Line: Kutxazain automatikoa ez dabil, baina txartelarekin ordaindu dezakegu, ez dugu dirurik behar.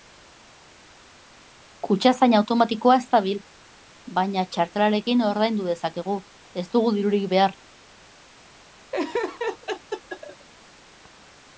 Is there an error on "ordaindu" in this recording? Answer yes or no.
no